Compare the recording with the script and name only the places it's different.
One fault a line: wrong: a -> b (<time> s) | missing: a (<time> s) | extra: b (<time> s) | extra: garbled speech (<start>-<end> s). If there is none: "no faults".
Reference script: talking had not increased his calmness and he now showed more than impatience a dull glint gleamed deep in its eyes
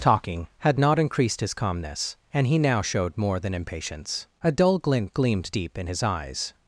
wrong: its -> his (5.8 s)